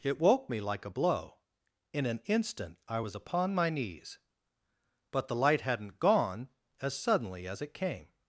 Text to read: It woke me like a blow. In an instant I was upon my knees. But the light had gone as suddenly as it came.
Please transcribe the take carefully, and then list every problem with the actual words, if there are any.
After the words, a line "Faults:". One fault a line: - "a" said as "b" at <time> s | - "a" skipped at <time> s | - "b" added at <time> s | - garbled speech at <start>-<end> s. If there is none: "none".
It woke me like a blow. In an instant I was upon my knees. But the light hadn't gone as suddenly as it came.
Faults:
- "had" said as "hadn't" at 5.6 s